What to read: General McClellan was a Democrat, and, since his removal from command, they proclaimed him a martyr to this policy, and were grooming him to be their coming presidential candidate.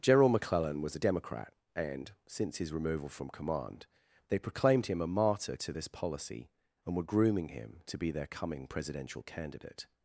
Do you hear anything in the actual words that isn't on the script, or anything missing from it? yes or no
no